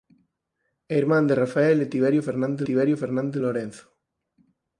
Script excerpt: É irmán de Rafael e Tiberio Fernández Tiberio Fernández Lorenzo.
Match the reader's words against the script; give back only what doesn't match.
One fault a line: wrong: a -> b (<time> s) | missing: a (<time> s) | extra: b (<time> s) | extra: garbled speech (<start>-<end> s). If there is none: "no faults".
no faults